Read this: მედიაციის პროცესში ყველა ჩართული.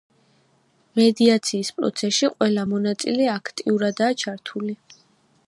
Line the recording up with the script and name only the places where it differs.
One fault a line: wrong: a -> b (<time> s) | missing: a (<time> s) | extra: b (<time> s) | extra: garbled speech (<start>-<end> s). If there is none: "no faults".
extra: მონაწილე აქტიურადაა (2.7 s)